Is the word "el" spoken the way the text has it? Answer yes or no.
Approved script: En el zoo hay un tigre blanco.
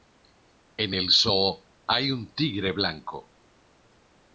yes